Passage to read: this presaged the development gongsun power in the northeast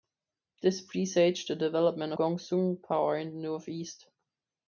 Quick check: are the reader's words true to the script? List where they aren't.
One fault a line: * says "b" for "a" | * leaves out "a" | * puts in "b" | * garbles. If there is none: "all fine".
all fine